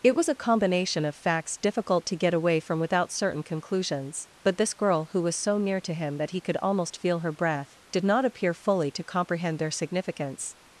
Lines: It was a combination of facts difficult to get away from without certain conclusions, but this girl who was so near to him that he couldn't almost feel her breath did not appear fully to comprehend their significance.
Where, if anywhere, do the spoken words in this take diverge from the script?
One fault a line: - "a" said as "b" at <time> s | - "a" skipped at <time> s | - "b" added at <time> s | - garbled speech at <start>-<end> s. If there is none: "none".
- "couldn't" said as "could" at 6.4 s